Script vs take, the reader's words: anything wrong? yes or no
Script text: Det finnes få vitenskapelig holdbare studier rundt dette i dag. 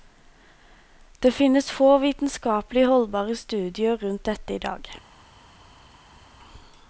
no